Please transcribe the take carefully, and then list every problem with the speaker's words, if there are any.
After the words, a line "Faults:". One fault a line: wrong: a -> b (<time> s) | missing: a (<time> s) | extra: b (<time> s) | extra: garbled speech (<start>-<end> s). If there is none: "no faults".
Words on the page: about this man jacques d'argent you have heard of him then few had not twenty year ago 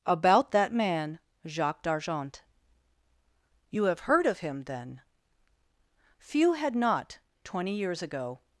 about that man jacques d'argent you have heard of him then few had not twenty years ago
Faults:
wrong: this -> that (0.5 s)
wrong: year -> years (7.8 s)